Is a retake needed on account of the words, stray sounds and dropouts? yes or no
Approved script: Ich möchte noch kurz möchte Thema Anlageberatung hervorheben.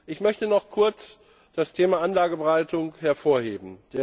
yes